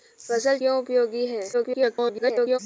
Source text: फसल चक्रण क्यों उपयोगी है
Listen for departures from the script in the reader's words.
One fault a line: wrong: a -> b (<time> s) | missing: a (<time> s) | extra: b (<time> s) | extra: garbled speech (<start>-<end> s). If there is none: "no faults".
missing: चक्रण (0.6 s)
extra: garbled speech (1.5-2.6 s)